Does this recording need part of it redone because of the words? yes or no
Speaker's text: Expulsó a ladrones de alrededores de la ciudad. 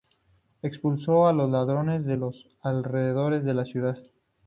yes